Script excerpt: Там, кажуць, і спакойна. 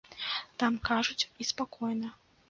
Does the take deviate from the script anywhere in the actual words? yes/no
no